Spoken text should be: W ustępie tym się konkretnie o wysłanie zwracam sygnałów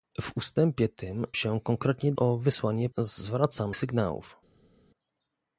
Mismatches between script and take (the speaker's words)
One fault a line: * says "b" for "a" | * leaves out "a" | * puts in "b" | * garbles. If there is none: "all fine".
all fine